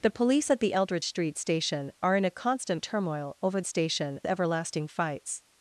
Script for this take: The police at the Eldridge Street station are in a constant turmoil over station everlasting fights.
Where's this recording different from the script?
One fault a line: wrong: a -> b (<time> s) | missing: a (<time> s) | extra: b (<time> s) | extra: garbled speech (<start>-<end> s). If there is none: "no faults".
no faults